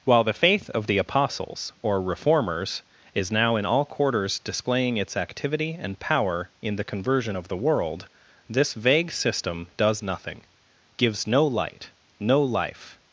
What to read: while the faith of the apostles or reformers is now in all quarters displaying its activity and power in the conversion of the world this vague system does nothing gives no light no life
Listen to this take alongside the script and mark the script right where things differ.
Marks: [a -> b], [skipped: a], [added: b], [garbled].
while the faith of the apostles or reformers is now in all quarters displaying its activity and power in the conversion of the world this vague system does nothing gives no light no life